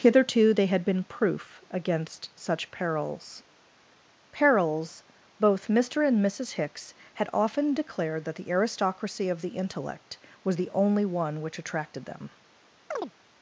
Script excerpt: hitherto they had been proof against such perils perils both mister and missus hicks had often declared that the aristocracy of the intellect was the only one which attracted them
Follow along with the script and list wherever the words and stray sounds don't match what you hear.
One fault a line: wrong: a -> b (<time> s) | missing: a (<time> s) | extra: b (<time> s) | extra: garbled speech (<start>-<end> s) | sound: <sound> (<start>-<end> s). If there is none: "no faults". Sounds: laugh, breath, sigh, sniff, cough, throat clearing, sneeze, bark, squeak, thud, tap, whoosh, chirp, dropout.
sound: chirp (12.9-13.1 s)